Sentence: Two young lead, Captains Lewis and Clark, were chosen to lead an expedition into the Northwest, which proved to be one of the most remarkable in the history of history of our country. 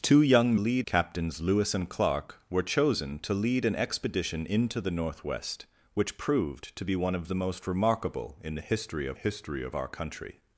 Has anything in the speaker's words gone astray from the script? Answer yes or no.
no